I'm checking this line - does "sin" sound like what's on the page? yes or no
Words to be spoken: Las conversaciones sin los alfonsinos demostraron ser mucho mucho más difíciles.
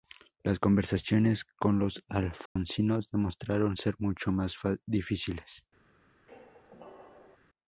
no